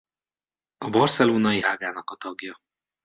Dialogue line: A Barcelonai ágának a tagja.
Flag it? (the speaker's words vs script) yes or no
no